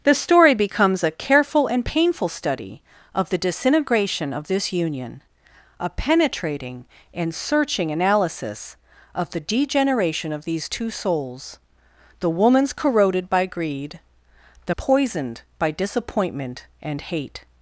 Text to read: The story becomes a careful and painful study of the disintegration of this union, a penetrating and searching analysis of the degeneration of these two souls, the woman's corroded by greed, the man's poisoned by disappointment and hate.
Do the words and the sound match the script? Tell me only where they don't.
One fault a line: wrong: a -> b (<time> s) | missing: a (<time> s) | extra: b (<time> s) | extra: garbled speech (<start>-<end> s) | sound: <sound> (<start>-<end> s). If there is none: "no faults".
missing: man's (14.7 s)